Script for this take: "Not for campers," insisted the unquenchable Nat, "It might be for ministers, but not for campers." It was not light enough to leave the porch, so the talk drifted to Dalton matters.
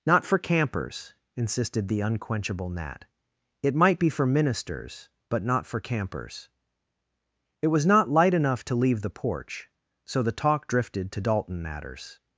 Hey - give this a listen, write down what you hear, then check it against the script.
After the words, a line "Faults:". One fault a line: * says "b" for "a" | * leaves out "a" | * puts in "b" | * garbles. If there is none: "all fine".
"Not for campers," insisted the unquenchable Nat, "It might be for ministers, but not for campers." It was not light enough to leave the porch, so the talk drifted to Dalton matters.
Faults:
all fine